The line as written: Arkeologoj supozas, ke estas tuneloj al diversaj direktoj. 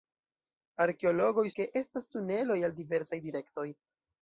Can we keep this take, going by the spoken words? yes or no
no